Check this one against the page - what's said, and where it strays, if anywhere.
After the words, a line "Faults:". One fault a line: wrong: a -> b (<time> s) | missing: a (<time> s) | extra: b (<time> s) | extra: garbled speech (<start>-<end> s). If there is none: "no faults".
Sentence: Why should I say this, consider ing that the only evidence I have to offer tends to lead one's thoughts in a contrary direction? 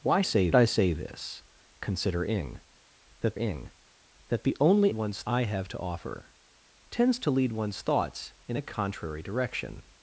Why say I say this, consider ing that ing that the only one's I have to offer tends to lead one's thoughts in a contrary direction?
Faults:
wrong: should -> say (0.2 s)
extra: ing that (3.3 s)
wrong: evidence -> one's (4.9 s)